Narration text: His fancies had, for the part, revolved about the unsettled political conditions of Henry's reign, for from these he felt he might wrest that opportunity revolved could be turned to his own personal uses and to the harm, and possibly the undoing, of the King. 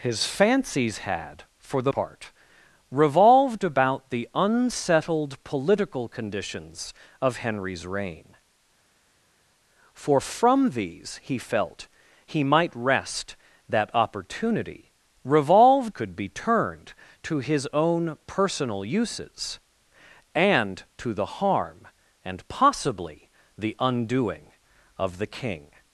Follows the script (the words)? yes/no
yes